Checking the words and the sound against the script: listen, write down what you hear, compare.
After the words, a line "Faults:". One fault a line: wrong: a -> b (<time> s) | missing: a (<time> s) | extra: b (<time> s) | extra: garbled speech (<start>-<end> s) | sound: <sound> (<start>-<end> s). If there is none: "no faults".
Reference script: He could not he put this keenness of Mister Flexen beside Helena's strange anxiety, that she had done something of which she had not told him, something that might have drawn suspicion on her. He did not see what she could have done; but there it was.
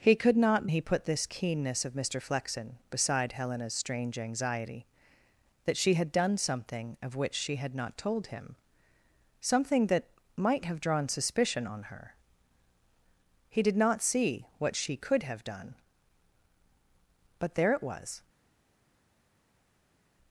He could not he put this keenness of Mister Flexen beside Helena's strange anxiety, that she had done something of which she had not told him, something that might have drawn suspicion on her. He did not see what she could have done; but there it was.
Faults:
no faults